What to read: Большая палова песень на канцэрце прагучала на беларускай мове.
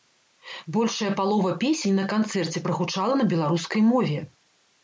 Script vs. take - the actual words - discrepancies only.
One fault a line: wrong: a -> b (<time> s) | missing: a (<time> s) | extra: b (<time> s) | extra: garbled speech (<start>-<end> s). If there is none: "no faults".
no faults